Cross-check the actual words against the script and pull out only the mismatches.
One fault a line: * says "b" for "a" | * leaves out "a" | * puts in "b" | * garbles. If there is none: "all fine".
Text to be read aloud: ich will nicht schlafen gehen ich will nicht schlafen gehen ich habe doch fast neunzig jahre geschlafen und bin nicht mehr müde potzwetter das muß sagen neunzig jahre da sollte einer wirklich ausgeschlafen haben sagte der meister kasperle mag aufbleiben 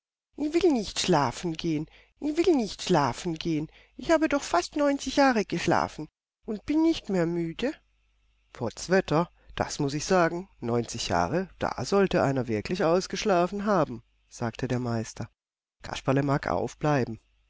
* puts in "ich"